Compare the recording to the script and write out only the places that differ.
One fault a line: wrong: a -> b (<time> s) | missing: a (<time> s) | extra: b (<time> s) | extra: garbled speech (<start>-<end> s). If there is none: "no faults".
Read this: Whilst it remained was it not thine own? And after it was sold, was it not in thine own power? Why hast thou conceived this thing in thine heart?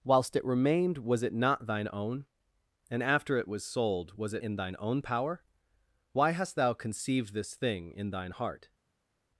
missing: not (4.4 s)